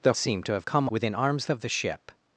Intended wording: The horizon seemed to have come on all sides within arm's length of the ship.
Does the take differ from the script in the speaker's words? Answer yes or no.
yes